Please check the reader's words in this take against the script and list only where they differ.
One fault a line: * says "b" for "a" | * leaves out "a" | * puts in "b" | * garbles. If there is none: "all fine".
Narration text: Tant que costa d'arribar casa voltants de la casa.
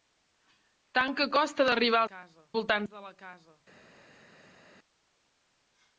all fine